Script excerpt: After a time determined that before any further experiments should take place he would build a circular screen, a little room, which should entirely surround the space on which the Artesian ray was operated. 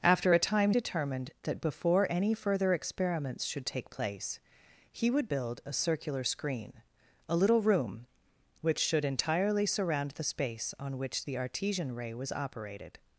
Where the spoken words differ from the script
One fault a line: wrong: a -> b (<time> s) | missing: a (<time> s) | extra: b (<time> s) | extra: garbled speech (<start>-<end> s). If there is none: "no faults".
no faults